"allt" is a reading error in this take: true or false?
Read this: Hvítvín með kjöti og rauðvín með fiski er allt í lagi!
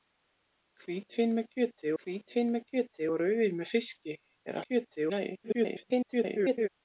true